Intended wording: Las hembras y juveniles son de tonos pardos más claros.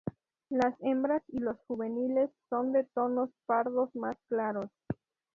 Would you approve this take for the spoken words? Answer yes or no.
no